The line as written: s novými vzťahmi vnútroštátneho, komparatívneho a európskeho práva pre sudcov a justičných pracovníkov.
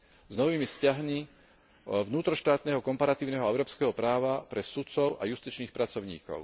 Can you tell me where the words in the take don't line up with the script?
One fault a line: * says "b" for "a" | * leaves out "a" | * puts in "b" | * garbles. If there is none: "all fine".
all fine